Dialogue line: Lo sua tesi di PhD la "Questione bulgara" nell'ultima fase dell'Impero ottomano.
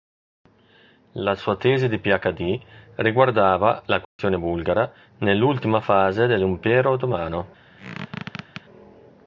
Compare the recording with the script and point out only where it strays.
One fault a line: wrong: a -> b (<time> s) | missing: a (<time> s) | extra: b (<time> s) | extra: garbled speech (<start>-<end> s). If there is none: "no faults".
wrong: Lo -> La (1.1 s)
extra: riguardava (3.0 s)